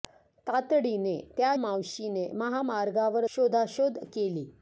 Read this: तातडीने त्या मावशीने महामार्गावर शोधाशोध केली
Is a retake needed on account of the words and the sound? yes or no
no